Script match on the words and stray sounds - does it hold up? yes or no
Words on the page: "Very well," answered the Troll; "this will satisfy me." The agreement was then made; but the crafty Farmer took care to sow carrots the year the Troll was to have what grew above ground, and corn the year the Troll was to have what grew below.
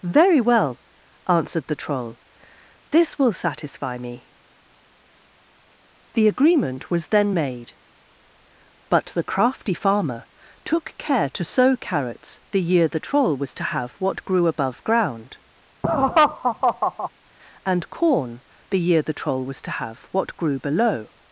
no